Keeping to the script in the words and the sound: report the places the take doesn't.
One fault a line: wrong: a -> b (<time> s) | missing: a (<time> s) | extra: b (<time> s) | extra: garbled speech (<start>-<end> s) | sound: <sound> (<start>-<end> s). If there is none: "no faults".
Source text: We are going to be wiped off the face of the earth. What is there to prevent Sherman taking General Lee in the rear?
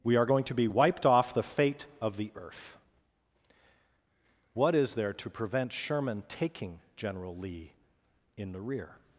wrong: face -> fate (1.4 s)